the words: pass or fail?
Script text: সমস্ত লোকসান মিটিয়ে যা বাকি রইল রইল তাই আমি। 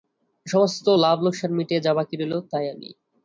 fail